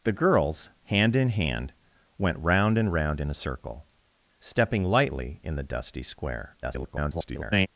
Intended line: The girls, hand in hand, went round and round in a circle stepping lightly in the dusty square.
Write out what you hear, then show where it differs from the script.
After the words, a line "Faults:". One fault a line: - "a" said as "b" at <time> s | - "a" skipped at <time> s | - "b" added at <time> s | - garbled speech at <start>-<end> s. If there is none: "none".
The girls, hand in hand, went round and round in a circle stepping lightly in the dusty square. [garbled]
Faults:
- garbled speech at 6.6-7.7 s